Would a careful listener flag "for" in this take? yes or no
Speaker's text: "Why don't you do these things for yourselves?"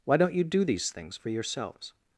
no